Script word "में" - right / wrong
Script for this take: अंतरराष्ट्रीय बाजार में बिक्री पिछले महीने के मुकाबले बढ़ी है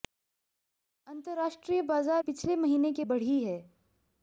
wrong